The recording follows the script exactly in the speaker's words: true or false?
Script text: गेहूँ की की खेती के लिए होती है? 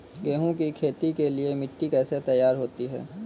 false